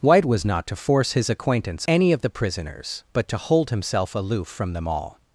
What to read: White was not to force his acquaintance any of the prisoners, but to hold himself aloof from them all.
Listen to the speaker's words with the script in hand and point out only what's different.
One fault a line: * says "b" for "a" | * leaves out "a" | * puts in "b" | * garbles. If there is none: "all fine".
all fine